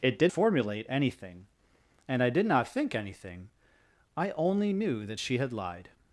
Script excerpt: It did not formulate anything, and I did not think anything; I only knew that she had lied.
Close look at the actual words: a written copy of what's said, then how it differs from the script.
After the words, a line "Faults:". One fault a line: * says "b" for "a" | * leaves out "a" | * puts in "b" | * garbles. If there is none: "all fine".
It did formulate anything, and I did not think anything; I only knew that she had lied.
Faults:
* leaves out "not"